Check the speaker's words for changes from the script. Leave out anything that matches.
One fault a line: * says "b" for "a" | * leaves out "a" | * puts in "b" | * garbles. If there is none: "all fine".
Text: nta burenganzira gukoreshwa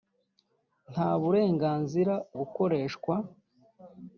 all fine